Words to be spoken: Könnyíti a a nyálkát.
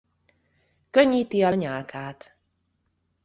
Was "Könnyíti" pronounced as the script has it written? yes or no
yes